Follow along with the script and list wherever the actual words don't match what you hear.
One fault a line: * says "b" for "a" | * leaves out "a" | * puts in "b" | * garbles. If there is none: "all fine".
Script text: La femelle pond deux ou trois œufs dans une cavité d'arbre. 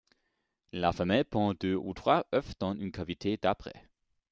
all fine